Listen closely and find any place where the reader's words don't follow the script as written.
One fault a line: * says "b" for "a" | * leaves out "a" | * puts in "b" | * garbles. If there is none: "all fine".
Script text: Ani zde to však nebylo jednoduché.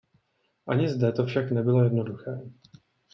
all fine